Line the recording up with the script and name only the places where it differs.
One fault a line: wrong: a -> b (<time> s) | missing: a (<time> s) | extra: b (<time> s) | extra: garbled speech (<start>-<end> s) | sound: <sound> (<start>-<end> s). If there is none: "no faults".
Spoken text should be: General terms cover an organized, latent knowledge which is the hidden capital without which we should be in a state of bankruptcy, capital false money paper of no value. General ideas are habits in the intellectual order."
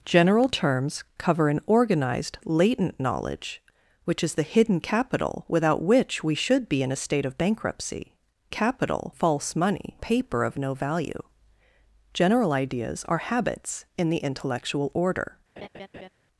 sound: laugh (15.6-16.1 s)